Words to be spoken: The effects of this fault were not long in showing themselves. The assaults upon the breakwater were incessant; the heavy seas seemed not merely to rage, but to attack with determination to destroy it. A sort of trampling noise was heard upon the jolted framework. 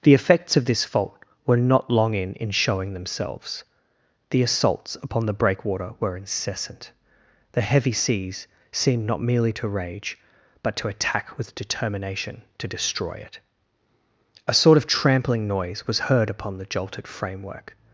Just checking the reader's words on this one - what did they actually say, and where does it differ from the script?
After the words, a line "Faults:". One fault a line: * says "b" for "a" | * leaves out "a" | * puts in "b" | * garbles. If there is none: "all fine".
The effects of this fault were not long in in showing themselves. The assaults upon the breakwater were incessant; the heavy seas seemed not merely to rage, but to attack with determination to destroy it. A sort of trampling noise was heard upon the jolted framework.
Faults:
* puts in "in"